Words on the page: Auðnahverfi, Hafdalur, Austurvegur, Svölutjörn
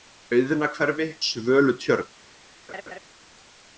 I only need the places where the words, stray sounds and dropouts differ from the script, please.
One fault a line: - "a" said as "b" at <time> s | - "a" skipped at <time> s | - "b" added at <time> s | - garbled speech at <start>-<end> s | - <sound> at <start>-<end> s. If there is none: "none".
- "Hafdalur Austurvegur" skipped at 1.1 s
- laugh at 2.7-3.0 s